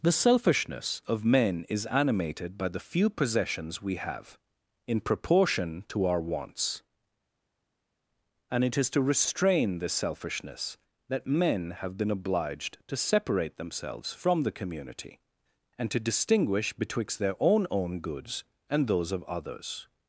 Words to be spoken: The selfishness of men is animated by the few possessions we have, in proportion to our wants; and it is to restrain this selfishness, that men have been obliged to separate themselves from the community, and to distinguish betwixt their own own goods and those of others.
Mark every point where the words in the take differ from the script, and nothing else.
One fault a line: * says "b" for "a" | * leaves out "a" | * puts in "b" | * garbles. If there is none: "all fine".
all fine